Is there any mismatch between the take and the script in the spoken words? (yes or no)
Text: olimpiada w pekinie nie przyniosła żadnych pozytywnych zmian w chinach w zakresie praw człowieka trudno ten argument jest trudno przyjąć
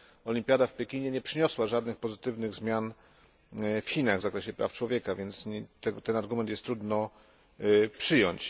yes